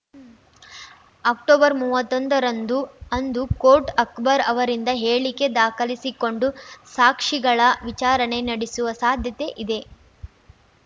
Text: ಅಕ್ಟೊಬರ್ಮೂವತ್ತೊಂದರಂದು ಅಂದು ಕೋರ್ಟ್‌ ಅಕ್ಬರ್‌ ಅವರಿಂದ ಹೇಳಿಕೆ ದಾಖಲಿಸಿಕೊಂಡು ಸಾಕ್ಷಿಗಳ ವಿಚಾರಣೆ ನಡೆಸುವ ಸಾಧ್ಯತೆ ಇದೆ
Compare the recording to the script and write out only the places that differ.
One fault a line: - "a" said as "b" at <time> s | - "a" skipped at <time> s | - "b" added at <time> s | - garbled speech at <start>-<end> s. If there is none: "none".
none